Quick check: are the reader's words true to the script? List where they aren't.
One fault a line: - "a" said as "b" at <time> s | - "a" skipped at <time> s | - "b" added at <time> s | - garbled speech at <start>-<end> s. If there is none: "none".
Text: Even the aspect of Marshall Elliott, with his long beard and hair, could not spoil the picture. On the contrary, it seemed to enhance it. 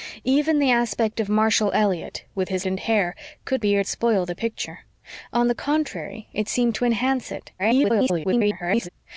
- "long beard" skipped at 2.6 s
- "not" said as "beard" at 3.6 s
- garbled speech at 7.6-8.9 s